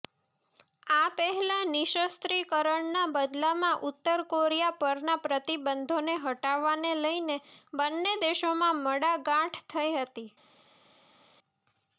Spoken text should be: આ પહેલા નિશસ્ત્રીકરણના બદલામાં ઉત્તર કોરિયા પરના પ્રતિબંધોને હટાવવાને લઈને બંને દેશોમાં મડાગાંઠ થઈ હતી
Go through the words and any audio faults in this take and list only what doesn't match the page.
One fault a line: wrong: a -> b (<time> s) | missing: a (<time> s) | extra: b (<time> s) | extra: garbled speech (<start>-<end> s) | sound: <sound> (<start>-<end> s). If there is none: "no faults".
no faults